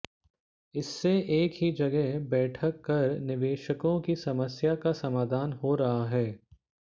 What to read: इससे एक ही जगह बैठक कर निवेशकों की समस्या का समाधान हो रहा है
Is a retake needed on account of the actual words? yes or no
no